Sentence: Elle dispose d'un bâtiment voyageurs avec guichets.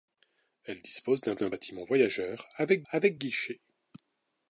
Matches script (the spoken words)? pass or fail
fail